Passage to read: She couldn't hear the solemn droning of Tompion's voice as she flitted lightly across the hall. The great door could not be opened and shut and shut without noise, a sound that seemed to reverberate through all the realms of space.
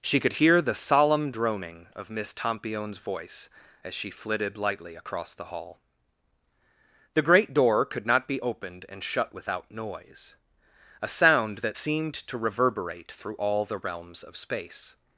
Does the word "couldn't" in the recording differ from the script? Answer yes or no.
yes